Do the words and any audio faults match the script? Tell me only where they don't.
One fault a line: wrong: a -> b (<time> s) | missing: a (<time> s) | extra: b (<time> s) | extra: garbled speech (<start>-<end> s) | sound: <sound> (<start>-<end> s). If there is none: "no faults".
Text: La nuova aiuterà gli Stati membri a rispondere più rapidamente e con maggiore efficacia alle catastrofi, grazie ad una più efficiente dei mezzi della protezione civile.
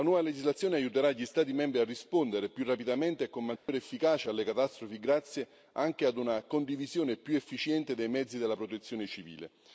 extra: legislazione (0.2 s)
sound: dropout (3.6-3.7 s)
extra: anche (5.7 s)
extra: condivisione (6.4 s)